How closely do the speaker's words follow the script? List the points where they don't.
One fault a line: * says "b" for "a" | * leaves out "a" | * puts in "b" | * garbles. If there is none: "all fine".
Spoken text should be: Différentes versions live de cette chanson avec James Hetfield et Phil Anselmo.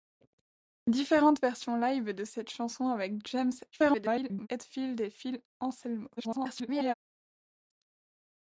* garbles
* garbles